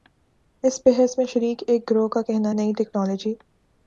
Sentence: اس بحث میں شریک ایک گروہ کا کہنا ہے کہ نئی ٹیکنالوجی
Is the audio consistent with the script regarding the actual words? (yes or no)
no